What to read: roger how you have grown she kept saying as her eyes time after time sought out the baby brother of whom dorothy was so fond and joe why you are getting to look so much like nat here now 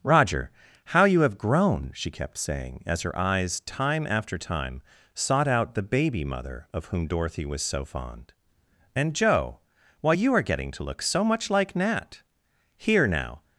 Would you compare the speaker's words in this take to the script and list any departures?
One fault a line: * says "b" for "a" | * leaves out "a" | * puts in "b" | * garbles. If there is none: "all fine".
* says "mother" for "brother"